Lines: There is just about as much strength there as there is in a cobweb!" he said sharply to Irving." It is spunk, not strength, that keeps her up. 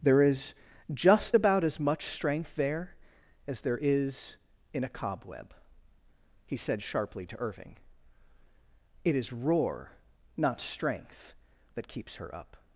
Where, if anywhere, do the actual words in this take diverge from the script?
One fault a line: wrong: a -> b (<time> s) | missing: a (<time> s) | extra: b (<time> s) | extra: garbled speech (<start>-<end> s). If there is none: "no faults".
wrong: spunk -> roar (9.3 s)